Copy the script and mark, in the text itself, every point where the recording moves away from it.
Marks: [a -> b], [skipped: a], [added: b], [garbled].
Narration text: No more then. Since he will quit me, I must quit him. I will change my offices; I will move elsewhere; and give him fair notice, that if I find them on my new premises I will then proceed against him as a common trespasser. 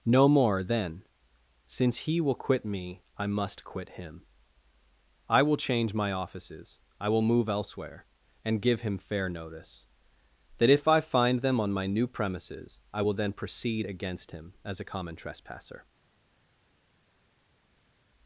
No more then. Since he will quit me, I must quit him. I will change my offices; I will move elsewhere; and give him fair notice, that if I find them on my new premises I will then proceed against him as a common trespasser.